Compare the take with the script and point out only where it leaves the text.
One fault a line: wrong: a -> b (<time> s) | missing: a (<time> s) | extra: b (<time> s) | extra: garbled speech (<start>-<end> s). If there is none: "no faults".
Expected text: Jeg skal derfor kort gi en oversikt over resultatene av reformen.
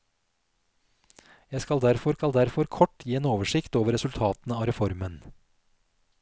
extra: skal derfor (2.2 s)